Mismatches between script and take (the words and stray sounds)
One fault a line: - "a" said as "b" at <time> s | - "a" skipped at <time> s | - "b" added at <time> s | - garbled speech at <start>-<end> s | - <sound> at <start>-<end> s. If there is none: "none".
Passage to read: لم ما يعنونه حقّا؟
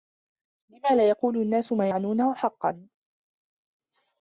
- "لا يقول النّاس" added at 1.0 s